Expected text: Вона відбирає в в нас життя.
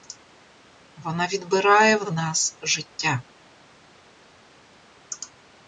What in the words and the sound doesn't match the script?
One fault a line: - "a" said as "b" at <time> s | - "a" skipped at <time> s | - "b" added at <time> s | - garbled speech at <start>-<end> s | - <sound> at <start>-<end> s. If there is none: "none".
none